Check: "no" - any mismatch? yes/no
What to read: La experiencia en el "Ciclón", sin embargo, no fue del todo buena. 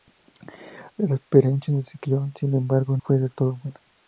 yes